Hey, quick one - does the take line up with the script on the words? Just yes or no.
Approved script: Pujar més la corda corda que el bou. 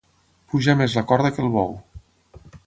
no